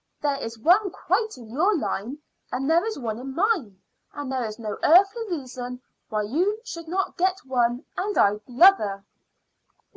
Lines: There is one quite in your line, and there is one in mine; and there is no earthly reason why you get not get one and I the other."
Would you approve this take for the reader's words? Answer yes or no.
no